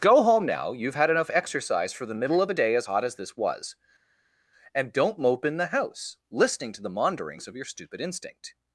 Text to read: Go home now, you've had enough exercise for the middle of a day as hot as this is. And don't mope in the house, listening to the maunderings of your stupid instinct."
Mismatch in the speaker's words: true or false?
true